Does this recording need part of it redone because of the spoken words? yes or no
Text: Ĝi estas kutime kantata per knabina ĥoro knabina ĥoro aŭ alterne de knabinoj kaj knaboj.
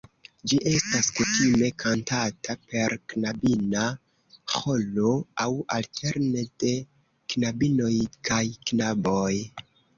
yes